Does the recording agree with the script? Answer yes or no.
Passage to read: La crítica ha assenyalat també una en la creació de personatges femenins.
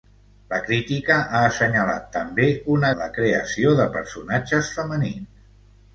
yes